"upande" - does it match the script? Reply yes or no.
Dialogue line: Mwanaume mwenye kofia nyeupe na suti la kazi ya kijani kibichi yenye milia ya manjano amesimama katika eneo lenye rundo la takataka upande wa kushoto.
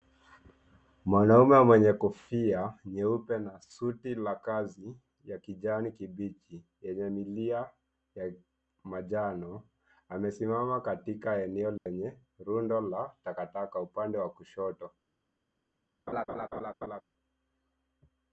yes